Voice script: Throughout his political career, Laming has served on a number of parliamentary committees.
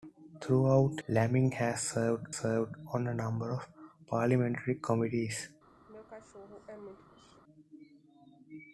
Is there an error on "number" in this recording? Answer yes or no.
no